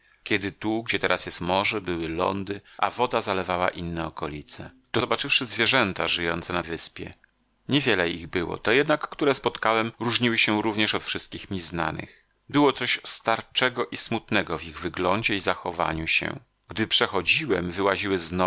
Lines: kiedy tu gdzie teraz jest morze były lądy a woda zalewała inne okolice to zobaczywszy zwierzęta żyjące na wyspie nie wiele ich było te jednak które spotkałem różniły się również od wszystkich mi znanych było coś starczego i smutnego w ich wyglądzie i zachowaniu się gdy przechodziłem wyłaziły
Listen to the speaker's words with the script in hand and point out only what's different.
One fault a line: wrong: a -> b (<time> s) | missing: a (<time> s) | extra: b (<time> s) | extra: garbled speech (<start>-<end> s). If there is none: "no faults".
no faults